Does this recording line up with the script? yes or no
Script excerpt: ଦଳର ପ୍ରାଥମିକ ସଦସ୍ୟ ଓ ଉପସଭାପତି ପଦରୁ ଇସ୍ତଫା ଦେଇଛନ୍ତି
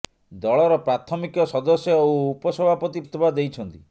no